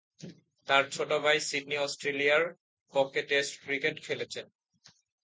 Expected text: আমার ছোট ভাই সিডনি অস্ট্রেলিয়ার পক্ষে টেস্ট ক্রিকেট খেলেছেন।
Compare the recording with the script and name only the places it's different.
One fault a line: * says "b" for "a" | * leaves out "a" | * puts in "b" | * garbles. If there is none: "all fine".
* says "তার" for "আমার"